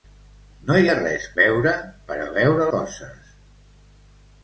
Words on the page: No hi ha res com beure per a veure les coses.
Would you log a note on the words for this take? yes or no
yes